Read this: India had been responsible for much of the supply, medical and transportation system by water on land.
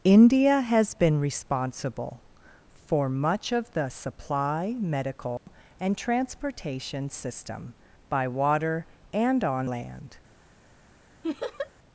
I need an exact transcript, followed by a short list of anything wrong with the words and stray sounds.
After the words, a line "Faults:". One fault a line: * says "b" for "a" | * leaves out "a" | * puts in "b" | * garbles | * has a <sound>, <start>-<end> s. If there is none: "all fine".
India has been responsible for much of the supply, medical and transportation system by water and on land.
Faults:
* says "has" for "had"
* has a dropout, 5.4-5.5 s
* puts in "and"
* has a laugh, 11.2-11.7 s